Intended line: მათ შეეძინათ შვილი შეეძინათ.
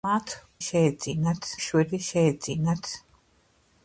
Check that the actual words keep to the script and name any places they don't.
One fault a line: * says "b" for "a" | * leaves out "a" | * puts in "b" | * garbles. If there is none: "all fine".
all fine